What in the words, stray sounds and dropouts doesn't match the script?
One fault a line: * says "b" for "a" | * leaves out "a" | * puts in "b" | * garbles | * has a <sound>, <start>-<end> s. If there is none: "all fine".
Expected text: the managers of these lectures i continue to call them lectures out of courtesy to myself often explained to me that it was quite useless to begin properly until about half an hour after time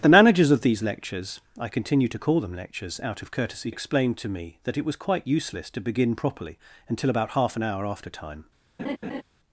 * leaves out "to myself often"
* has a laugh, 8.8-9.2 s